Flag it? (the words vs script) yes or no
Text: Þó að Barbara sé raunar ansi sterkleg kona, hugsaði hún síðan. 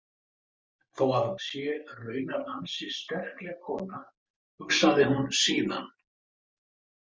yes